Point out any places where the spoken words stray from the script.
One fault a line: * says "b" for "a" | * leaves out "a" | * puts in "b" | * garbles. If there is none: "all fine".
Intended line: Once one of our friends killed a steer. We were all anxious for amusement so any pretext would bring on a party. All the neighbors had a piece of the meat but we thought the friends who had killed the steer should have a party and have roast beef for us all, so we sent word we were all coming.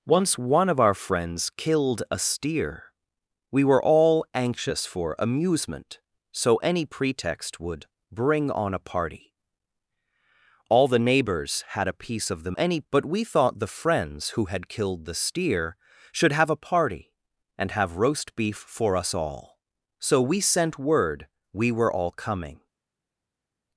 * says "any" for "meat"